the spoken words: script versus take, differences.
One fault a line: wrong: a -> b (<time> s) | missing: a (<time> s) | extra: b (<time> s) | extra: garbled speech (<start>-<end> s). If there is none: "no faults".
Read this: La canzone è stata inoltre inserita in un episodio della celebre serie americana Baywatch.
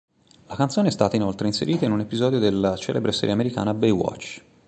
no faults